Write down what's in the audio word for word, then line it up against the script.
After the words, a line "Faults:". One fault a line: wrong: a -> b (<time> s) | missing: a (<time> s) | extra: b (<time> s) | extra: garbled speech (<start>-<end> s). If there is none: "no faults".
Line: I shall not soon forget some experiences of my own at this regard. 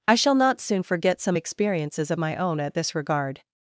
I shall not soon forget some experiences of my own at this regard.
Faults:
no faults